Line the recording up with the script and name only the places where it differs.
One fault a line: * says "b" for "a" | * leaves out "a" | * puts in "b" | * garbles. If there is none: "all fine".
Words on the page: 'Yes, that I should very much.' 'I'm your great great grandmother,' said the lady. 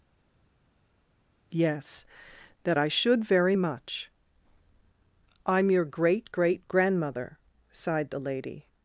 * says "sighed" for "said"